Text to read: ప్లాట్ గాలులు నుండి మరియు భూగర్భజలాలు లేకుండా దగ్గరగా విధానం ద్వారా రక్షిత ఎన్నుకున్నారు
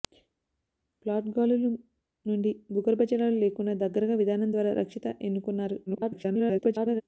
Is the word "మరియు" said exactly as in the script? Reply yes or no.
no